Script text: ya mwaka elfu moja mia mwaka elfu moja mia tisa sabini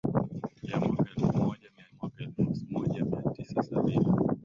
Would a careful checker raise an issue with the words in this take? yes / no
no